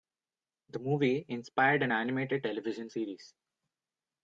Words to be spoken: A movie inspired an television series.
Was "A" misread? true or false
true